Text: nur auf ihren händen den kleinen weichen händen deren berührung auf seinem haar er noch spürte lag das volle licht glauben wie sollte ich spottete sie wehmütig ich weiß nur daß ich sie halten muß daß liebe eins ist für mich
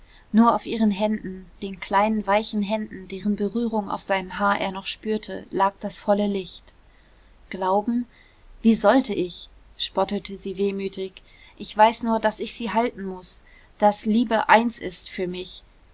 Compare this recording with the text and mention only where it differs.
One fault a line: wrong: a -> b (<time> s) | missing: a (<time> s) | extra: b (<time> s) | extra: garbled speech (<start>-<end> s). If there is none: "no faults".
no faults